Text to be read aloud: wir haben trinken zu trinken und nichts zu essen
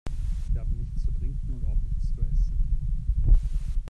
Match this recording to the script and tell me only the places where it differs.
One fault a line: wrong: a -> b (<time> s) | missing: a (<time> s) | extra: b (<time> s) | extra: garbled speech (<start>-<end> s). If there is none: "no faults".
wrong: trinken -> nichts (0.8 s)
extra: auch (1.7 s)